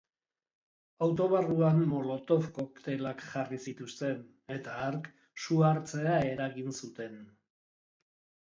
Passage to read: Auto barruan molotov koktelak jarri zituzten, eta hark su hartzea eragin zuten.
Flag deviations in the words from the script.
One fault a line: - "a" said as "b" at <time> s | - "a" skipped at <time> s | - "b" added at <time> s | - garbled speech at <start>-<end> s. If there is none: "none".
none